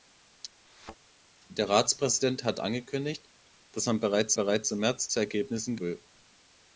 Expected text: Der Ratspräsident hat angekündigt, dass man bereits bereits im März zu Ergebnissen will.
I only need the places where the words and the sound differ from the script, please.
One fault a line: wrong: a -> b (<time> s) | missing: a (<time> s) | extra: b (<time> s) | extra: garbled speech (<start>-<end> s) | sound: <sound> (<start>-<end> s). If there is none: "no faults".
sound: thud (0.7-1.0 s)